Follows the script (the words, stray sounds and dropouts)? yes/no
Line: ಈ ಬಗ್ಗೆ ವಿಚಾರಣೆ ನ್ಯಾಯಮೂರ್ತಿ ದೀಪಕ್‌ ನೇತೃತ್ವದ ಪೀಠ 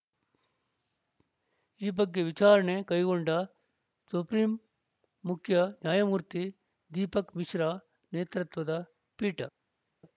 no